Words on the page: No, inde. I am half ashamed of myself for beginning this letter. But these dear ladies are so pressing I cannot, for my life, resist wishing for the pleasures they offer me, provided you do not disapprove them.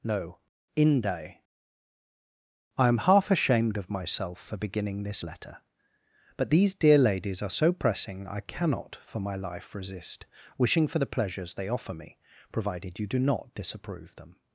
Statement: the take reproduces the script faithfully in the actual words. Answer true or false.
true